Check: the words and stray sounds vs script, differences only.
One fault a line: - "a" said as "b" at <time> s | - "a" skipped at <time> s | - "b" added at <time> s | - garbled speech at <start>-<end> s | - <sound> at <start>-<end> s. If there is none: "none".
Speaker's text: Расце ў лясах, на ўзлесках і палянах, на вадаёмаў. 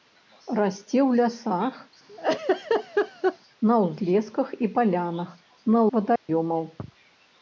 - laugh at 2.1-3.4 s
- dropout at 6.2-6.3 s